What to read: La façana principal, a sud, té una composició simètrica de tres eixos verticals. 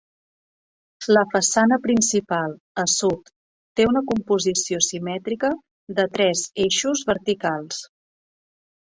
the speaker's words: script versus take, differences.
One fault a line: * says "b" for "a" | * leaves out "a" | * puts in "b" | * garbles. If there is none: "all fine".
all fine